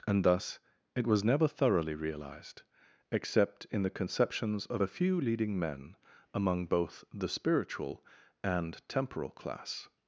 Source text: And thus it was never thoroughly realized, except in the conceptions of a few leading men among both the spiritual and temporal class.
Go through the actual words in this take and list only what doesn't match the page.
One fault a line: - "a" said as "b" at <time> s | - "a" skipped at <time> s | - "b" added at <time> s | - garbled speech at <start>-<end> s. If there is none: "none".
none